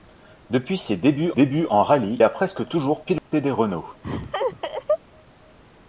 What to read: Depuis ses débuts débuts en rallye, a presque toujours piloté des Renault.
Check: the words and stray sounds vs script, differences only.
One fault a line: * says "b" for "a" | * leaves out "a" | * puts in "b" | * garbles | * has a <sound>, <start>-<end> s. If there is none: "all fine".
* has a dropout, 3.2-3.3 s
* has a laugh, 4.0-5.0 s